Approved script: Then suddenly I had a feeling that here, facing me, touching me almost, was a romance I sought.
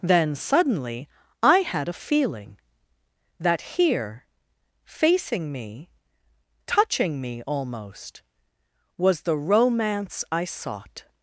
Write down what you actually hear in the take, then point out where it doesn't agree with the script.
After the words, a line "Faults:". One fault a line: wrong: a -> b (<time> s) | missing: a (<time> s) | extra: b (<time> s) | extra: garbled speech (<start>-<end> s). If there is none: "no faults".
Then suddenly I had a feeling that here, facing me, touching me almost, was the romance I sought.
Faults:
wrong: a -> the (9.2 s)